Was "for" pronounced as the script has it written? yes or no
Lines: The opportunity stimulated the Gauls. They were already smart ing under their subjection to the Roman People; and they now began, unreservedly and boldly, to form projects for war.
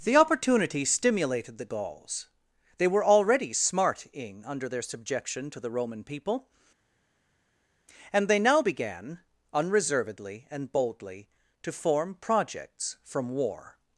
no